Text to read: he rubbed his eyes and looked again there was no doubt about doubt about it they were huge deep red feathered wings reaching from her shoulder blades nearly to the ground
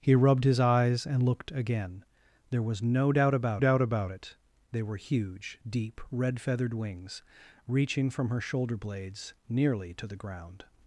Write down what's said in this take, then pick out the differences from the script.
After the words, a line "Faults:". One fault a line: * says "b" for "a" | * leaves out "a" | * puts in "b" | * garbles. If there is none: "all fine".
he rubbed his eyes and looked again there was no doubt about doubt about it they were huge deep red feathered wings reaching from her shoulder blades nearly to the ground
Faults:
all fine